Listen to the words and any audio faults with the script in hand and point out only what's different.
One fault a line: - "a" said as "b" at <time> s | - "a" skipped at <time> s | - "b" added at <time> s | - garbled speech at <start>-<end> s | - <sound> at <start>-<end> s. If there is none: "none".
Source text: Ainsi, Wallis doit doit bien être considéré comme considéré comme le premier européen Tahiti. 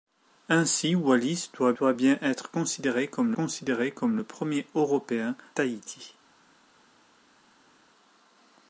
none